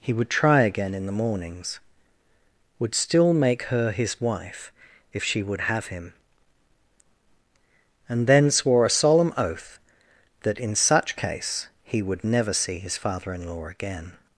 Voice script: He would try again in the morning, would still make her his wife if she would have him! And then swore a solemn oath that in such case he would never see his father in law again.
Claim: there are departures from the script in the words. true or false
true